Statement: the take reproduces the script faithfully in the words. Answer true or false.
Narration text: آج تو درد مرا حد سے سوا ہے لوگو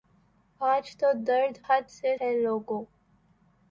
false